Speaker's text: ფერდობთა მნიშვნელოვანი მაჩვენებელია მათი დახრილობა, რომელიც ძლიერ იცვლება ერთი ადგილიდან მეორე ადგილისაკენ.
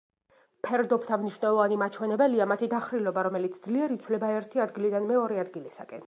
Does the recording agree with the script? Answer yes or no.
yes